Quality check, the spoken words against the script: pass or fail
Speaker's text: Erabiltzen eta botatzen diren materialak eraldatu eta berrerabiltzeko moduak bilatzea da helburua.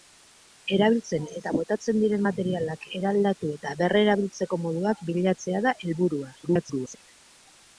fail